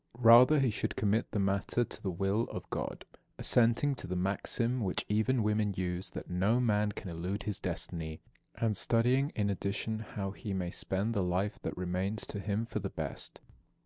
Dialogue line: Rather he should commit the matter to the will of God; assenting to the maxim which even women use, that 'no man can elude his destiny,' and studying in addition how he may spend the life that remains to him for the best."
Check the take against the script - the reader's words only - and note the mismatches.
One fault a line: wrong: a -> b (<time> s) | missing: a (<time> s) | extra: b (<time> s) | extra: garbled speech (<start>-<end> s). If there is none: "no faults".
no faults